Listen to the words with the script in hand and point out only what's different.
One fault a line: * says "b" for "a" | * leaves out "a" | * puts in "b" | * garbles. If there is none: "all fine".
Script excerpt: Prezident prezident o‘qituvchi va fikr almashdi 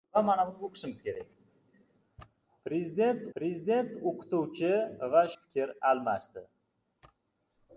all fine